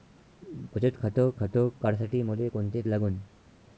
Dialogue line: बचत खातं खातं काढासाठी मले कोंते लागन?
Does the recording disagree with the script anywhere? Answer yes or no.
no